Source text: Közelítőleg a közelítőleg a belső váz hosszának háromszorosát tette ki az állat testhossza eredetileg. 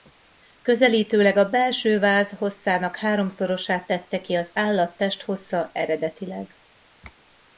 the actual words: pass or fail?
fail